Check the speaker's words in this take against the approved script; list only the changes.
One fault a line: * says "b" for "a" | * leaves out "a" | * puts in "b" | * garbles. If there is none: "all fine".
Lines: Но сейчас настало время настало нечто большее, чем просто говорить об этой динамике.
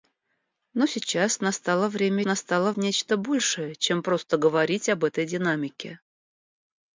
all fine